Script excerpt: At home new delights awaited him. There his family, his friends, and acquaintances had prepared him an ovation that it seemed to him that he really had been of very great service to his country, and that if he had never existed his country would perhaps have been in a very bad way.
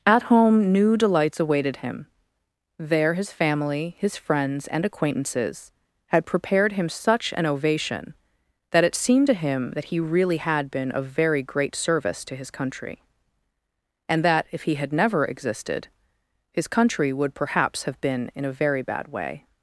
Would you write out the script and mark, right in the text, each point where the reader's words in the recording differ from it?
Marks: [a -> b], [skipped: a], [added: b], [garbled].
At home new delights awaited him. There his family, his friends, and acquaintances had prepared him [added: such] an ovation that it seemed to him that he really had been of very great service to his country, and that if he had never existed his country would perhaps have been in a very bad way.